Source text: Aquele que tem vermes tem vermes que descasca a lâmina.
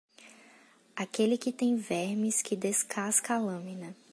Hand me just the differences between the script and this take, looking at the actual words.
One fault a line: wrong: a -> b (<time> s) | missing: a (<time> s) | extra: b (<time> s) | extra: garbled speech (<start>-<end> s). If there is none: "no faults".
missing: tem vermes (2.4 s)